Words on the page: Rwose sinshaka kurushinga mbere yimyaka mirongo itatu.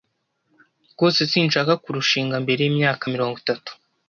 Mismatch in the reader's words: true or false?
false